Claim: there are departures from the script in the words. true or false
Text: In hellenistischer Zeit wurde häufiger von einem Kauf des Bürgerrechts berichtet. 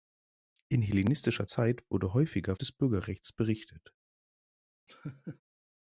true